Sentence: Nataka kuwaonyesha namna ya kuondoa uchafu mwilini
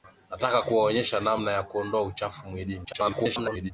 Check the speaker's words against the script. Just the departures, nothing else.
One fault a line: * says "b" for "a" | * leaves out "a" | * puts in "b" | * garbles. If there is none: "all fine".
* garbles